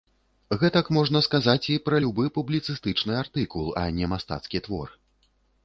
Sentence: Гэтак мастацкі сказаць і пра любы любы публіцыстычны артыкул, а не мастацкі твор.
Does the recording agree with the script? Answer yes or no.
no